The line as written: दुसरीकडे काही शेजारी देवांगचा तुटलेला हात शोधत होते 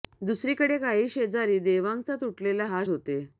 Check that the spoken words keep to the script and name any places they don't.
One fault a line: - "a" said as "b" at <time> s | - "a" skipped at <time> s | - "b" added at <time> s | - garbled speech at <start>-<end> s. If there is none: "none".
- "शोधत" skipped at 2.8 s